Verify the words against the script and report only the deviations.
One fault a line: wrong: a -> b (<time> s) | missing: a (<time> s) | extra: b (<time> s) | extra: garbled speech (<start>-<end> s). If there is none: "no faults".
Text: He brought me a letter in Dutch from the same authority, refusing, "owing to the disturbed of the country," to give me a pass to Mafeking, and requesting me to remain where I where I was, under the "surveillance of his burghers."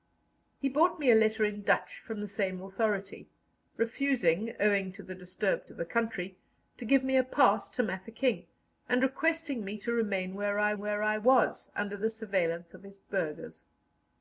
no faults